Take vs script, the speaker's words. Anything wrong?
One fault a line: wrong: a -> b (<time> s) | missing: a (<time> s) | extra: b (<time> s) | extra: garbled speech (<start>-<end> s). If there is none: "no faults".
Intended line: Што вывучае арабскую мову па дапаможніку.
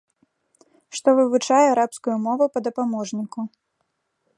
no faults